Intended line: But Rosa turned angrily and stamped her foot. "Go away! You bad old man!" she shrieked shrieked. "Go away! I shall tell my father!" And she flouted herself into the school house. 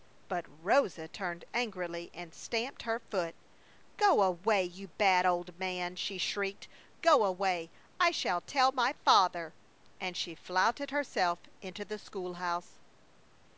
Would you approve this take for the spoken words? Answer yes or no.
no